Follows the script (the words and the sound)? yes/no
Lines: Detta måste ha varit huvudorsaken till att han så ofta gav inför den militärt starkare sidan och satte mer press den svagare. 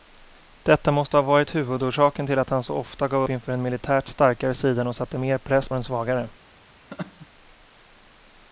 no